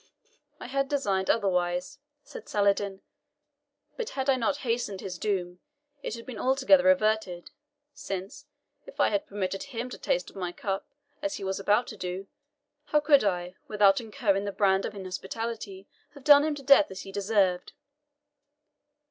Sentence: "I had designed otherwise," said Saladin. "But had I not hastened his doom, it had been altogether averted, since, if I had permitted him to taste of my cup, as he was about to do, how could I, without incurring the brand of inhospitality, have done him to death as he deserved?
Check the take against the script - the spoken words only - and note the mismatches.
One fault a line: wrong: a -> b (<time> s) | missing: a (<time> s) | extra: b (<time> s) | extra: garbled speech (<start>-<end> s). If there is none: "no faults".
no faults